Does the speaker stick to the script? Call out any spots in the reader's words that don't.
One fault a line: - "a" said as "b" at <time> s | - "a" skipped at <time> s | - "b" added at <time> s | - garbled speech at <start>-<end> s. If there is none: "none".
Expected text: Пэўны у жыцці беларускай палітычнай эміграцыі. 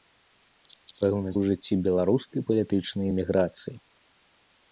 none